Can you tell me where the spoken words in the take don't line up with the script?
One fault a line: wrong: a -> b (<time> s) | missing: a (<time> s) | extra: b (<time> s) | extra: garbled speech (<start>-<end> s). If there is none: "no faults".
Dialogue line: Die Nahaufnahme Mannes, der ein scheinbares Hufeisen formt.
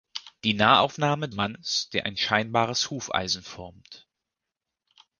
no faults